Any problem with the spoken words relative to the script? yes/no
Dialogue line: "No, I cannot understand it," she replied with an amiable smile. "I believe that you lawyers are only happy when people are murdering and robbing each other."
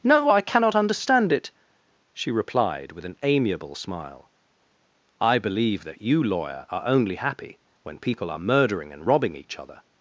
yes